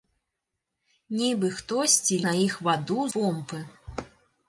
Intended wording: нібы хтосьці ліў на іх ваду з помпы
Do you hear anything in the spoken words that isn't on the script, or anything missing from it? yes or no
yes